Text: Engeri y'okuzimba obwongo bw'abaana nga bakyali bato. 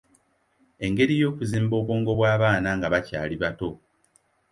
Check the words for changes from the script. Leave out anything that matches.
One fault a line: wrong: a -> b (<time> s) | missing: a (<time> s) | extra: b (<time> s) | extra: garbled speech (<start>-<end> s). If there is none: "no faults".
no faults